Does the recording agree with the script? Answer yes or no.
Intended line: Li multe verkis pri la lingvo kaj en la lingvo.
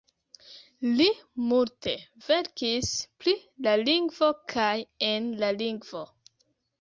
yes